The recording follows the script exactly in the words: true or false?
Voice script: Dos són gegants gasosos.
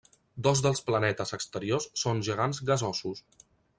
false